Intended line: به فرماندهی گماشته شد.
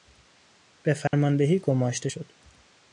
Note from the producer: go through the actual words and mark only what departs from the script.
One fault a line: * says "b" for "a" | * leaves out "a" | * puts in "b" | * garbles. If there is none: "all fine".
all fine